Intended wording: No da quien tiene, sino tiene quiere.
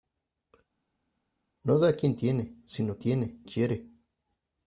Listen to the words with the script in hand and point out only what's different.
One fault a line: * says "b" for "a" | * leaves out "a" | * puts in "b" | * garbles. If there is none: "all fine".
all fine